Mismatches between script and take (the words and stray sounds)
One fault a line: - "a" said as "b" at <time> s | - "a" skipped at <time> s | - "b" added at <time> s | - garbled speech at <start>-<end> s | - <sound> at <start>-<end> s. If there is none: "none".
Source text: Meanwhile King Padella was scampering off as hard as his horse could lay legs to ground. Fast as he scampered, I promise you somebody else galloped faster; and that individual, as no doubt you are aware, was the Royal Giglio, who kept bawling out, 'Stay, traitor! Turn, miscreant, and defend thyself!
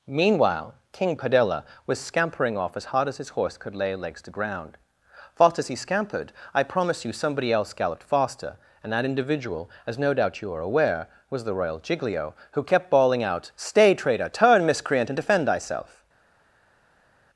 none